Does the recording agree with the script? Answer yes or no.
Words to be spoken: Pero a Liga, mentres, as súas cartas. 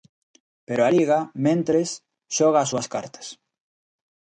no